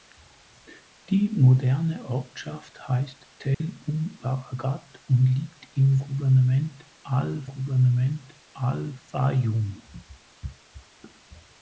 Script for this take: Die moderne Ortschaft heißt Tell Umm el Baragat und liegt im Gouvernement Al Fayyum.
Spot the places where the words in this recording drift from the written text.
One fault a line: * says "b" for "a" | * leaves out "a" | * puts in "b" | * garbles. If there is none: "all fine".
* leaves out "el"
* puts in "Gouvernement Al"